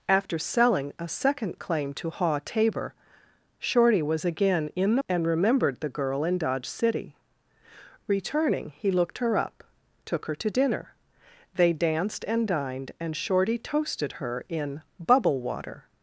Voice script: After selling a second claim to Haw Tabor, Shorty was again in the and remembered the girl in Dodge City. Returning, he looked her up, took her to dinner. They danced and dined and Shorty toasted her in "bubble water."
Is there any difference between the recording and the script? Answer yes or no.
no